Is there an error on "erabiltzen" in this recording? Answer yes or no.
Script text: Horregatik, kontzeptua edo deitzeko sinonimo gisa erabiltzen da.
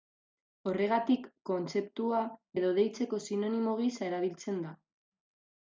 no